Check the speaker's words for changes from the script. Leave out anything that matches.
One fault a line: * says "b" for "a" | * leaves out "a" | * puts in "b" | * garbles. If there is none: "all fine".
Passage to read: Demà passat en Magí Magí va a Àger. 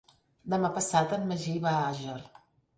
* leaves out "Magí"